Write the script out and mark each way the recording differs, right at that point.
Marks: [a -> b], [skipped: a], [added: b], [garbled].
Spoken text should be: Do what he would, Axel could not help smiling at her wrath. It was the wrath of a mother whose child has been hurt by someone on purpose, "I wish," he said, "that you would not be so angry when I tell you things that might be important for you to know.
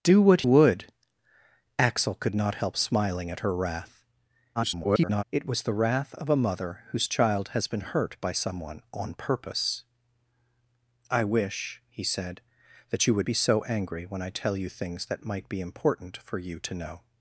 Do what [skipped: he] would, Axel could not help smiling at her wrath. [garbled] It was the wrath of a mother whose child has been hurt by someone on purpose, "I wish," he said, "that you would [skipped: not] be so angry when I tell you things that might be important for you to know.